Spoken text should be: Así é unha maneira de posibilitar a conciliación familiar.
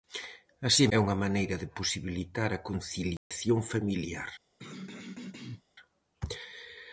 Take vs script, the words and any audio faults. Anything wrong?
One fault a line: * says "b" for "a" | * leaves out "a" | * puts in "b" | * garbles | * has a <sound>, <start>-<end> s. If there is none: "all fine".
* has a dropout, 3.2-3.3 s
* has a throat clearing, 4.6-5.6 s